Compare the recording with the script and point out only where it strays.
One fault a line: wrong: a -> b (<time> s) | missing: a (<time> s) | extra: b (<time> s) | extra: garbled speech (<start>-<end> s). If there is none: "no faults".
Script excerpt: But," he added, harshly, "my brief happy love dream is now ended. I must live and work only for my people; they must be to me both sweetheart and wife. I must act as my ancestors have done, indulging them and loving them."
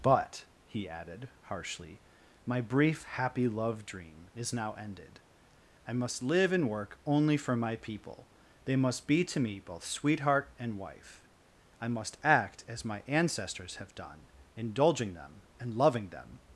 no faults